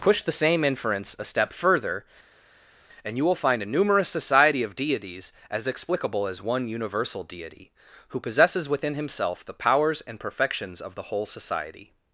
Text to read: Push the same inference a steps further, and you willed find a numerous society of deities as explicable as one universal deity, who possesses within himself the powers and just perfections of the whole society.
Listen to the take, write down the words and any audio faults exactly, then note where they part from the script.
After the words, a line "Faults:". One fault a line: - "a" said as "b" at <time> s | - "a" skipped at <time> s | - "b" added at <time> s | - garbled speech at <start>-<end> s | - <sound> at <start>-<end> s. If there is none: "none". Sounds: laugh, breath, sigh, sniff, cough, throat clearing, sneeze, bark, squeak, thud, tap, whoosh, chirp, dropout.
Push the same inference a step further, and you will find a numerous society of deities as explicable as one universal deity, who possesses within himself the powers and perfections of the whole society.
Faults:
- "steps" said as "step" at 1.2 s
- "willed" said as "will" at 3.2 s
- "just" skipped at 10.2 s